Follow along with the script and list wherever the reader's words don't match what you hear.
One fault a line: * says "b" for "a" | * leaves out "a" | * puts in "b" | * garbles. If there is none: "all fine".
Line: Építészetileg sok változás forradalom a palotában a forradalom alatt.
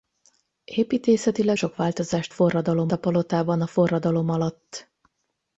all fine